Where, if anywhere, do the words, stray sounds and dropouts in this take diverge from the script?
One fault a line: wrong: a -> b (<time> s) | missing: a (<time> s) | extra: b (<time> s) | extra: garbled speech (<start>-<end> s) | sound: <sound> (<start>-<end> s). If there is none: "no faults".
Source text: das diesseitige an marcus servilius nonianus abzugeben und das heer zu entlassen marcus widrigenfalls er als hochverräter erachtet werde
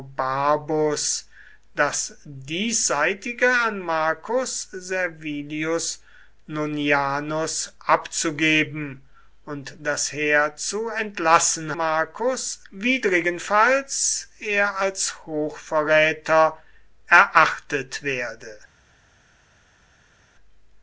no faults